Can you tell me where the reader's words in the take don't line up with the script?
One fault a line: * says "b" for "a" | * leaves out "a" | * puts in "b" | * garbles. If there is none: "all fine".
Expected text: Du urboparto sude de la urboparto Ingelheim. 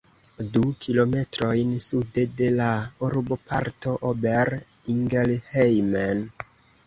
* says "kilometrojn" for "urboparto"
* puts in "Ober"